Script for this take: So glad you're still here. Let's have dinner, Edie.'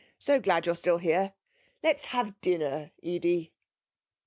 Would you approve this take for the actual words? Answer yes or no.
yes